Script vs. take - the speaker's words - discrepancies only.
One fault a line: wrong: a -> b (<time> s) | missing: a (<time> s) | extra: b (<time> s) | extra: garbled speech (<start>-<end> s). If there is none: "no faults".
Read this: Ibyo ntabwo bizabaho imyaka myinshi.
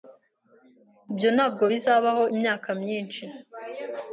no faults